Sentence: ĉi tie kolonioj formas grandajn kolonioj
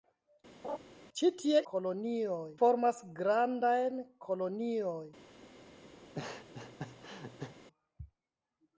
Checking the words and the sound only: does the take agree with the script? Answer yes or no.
no